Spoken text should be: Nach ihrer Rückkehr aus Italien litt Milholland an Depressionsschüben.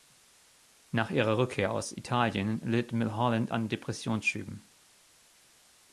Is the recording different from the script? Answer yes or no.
no